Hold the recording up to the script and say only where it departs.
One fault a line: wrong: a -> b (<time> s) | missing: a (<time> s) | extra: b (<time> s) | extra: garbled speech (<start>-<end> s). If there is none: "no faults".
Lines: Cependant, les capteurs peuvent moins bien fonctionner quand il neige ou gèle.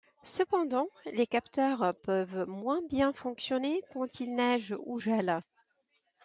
no faults